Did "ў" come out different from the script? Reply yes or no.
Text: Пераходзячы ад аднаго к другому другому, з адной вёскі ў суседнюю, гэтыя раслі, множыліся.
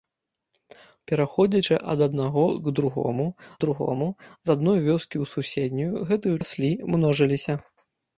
no